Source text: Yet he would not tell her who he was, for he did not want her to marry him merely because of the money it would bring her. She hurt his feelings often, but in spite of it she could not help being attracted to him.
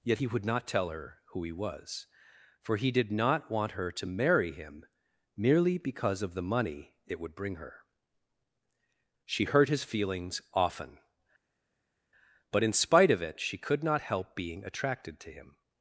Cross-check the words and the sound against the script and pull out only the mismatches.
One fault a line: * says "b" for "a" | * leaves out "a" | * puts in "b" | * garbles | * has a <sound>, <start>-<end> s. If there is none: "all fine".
all fine